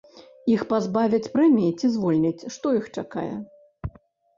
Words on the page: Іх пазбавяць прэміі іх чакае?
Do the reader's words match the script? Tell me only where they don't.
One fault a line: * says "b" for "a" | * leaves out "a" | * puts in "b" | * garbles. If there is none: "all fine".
* puts in "ці звольняць што"